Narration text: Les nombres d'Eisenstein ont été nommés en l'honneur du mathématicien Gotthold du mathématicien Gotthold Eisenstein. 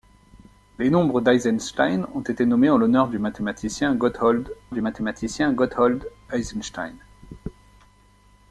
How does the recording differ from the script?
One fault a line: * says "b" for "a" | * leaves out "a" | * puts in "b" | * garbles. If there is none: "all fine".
all fine